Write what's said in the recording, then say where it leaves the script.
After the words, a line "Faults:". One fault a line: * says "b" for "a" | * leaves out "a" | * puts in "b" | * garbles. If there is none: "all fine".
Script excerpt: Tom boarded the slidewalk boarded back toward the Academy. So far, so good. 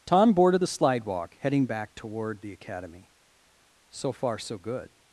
Tom boarded the slidewalk heading back toward the Academy. So far, so good.
Faults:
* says "heading" for "boarded"